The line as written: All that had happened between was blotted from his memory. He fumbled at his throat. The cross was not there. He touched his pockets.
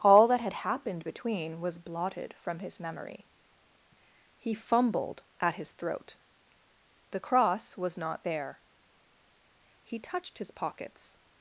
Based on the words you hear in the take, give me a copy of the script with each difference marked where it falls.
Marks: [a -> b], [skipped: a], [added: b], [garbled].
All that had happened between was blotted from his memory. He fumbled at his throat. The cross was not there. He touched his pockets.